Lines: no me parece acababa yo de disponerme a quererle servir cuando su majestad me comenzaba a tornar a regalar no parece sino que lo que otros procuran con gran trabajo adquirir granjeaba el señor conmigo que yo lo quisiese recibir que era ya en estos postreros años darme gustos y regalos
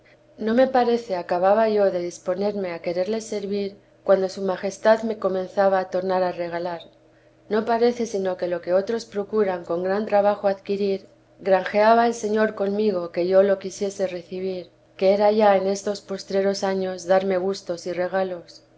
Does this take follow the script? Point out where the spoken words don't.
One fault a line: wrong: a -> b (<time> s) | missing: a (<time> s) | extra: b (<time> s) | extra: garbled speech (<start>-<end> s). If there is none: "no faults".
no faults